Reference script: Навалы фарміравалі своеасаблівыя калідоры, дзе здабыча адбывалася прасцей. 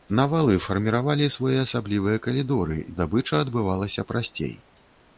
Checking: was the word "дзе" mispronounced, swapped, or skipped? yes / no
yes